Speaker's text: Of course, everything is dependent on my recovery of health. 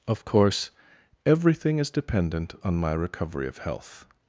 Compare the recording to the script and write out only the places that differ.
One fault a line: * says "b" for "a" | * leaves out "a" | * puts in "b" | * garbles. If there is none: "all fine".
all fine